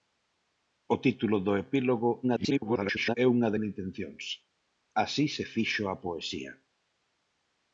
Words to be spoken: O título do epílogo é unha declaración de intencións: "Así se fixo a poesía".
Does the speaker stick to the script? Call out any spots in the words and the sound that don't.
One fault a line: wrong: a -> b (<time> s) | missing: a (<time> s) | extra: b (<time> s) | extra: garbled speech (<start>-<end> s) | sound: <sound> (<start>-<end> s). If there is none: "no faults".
extra: garbled speech (2.2-3.2 s)
missing: declaración (3.5 s)